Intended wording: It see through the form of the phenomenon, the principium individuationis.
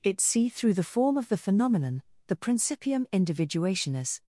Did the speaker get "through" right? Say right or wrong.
right